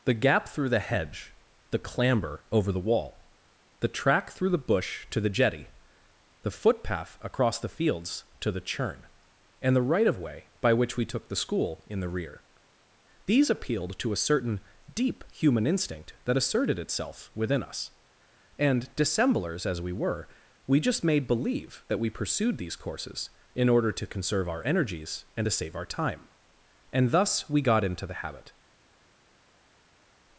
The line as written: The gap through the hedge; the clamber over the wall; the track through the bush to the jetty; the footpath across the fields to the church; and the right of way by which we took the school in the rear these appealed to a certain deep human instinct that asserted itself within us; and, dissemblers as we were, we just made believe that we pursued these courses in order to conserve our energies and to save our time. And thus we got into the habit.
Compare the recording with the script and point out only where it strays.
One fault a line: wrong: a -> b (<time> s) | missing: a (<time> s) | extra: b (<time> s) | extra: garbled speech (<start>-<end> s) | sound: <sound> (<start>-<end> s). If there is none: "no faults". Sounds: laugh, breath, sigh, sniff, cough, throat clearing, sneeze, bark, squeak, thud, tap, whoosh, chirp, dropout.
wrong: church -> churn (8.7 s)